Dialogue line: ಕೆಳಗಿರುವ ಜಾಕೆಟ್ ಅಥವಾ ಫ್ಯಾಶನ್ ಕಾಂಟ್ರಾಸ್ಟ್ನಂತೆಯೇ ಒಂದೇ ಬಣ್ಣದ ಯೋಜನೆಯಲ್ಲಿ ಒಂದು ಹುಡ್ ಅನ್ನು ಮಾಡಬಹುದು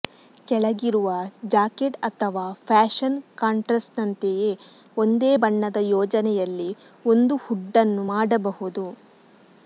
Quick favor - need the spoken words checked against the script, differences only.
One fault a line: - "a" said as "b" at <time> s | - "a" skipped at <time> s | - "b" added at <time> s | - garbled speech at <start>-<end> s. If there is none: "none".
none